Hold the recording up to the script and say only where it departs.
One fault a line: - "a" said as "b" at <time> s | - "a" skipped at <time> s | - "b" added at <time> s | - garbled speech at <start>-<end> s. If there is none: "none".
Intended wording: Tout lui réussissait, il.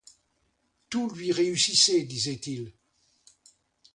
- "disait" added at 2.0 s